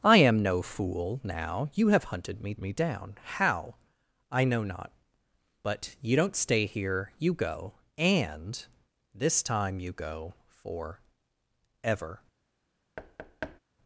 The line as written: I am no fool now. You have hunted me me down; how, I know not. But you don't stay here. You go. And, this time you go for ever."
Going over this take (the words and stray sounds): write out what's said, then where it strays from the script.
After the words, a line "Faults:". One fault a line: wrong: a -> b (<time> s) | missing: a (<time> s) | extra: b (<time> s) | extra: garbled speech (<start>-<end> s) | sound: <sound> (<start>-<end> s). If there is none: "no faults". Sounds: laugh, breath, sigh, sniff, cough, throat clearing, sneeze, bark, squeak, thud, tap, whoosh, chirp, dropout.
I am no fool now. You have hunted me me down; how, I know not. But you don't stay here. You go. And, this time you go for ever."
Faults:
sound: thud (13.0-13.6 s)